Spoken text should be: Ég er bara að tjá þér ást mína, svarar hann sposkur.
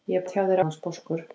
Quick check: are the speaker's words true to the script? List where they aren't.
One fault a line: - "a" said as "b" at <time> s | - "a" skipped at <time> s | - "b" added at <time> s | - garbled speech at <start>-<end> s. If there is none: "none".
- "bara" skipped at 0.2 s
- "ást mína svarar" skipped at 0.6 s